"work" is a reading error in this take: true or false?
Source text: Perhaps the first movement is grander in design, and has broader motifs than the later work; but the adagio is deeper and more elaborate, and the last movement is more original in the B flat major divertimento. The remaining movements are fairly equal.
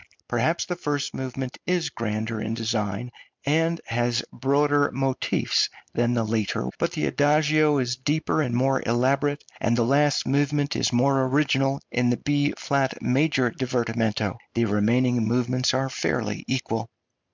true